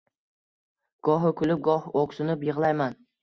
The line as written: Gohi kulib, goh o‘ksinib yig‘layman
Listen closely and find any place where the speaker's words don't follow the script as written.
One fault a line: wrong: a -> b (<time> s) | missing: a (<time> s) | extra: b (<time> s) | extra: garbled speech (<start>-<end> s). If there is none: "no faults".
no faults